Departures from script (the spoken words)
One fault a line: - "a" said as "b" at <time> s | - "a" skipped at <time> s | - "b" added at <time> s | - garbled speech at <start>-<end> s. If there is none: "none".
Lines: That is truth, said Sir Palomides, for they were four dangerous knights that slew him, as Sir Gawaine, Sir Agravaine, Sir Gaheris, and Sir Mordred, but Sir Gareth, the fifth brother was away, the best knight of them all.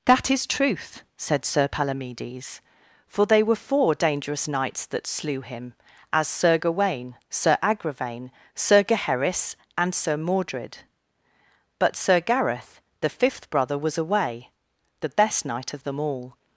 none